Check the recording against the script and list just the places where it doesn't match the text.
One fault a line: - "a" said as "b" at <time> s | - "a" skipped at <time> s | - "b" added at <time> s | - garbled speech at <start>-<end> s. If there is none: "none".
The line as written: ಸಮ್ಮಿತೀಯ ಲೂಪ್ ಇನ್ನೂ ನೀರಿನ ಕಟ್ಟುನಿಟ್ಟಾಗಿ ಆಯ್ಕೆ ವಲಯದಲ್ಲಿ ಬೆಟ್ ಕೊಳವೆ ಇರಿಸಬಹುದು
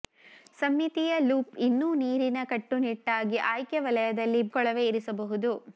- "ಬೆಟ್" skipped at 4.4 s